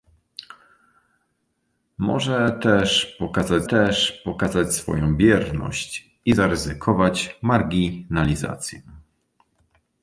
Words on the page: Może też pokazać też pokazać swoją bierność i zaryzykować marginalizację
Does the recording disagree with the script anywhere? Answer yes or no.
no